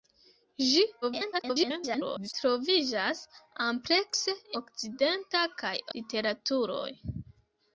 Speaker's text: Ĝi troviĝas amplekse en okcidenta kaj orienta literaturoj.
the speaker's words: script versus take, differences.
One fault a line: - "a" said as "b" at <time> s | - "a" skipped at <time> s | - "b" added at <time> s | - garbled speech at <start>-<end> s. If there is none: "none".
- garbled speech at 1.0-2.3 s
- "en" skipped at 4.3 s
- "orienta" skipped at 5.7 s